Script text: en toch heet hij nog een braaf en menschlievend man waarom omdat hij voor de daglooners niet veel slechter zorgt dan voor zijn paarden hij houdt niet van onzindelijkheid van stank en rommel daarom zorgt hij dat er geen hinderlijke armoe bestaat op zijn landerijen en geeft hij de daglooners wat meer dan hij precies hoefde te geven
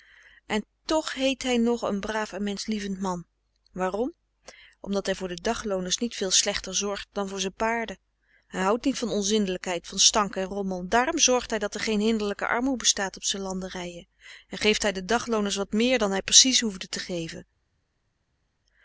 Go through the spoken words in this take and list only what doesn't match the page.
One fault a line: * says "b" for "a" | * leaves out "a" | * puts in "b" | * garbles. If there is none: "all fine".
all fine